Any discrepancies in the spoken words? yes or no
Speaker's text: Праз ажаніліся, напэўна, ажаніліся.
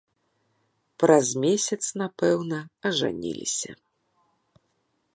yes